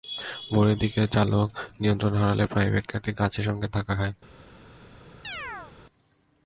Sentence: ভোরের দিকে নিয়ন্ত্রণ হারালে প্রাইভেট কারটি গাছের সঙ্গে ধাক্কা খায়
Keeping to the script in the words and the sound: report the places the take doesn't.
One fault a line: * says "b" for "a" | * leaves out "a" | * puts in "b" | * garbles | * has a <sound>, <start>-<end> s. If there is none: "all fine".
* puts in "চালক"
* has a chirp, 5.2-5.7 s